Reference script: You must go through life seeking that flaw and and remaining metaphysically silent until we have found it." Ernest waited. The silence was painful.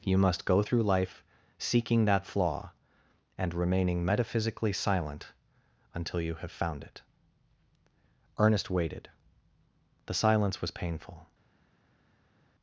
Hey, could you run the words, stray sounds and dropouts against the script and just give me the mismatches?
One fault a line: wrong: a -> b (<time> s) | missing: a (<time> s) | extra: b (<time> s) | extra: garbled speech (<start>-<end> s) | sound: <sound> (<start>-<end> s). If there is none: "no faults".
missing: and (3.5 s)
wrong: we -> you (6.2 s)